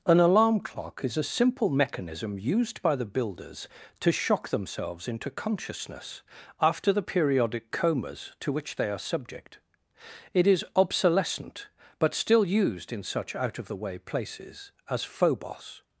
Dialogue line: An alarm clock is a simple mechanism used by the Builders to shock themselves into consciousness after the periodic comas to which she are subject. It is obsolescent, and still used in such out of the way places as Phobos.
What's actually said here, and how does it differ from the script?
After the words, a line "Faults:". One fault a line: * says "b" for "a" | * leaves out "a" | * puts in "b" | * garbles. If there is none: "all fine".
An alarm clock is a simple mechanism used by the Builders to shock themselves into consciousness after the periodic comas to which they are subject. It is obsolescent, but still used in such out of the way places as Phobos.
Faults:
* says "they" for "she"
* says "but" for "and"